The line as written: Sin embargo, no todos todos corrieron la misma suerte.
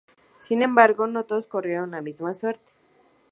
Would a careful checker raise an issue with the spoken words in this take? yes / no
yes